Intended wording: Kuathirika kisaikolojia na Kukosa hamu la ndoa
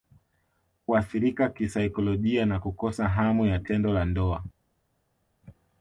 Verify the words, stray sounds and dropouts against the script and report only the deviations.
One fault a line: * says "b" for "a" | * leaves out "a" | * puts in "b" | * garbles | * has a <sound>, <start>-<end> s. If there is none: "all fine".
* puts in "ya tendo"